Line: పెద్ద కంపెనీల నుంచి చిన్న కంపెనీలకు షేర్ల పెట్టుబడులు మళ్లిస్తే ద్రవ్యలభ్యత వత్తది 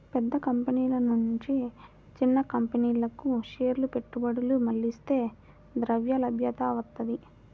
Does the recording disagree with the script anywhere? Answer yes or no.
no